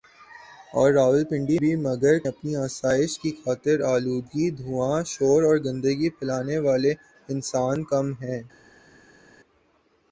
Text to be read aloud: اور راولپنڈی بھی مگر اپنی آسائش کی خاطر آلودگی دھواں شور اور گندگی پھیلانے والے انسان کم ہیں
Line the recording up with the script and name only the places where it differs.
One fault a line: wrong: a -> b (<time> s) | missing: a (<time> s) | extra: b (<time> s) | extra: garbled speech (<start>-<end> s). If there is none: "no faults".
no faults